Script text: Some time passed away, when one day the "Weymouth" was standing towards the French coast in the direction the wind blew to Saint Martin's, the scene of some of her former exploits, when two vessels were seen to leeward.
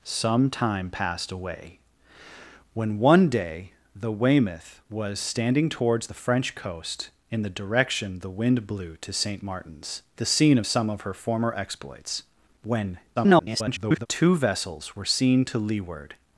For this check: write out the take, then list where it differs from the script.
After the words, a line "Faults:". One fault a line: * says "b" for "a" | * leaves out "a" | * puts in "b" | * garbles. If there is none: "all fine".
Some time passed away, when one day the "Weymouth" was standing towards the French coast in the direction the wind blew to Saint Martin's, the scene of some of her former exploits, when [garbled] two vessels were seen to leeward.
Faults:
* garbles